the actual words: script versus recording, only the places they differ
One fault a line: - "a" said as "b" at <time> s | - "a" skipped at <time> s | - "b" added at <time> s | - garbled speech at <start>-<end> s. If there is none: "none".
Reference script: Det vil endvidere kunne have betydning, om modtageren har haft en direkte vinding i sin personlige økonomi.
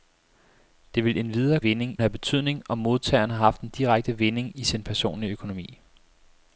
- "kunne" said as "vinding" at 1.6 s